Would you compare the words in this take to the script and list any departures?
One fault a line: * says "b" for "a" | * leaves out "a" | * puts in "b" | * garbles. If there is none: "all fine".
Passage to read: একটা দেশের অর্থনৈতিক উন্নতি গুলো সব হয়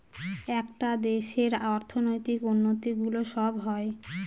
all fine